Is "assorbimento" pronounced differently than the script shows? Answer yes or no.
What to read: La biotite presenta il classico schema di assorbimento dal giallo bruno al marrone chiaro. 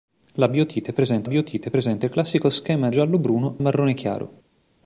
yes